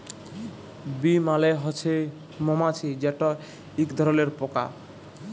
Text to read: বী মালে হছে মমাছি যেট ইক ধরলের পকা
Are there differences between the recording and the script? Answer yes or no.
no